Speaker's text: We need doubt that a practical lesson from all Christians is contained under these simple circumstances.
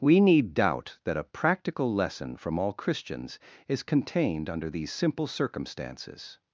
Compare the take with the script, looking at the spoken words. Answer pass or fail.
pass